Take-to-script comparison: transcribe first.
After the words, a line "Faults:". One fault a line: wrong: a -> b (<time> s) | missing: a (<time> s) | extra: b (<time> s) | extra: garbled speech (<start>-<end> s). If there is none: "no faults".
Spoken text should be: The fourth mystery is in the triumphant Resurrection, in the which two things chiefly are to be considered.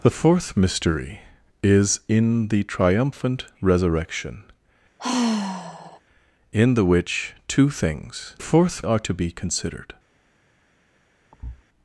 The fourth mystery is in the triumphant Resurrection, in the which two things fourth are to be considered.
Faults:
wrong: chiefly -> fourth (8.4 s)